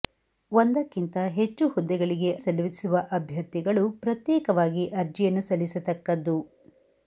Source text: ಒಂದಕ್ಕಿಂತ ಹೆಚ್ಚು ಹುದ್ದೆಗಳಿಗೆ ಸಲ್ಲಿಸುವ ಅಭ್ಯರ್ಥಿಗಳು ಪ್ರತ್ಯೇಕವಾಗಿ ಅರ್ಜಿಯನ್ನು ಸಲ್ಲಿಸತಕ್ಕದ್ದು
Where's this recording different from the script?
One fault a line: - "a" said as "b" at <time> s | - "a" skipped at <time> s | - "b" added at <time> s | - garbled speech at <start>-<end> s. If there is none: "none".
none